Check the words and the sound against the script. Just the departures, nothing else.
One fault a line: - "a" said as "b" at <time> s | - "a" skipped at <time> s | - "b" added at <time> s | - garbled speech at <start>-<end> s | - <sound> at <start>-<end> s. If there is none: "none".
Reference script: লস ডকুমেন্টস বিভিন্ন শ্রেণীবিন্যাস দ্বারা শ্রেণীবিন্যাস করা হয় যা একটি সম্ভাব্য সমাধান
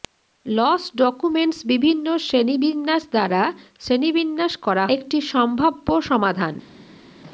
- "হয় যা" skipped at 4.8 s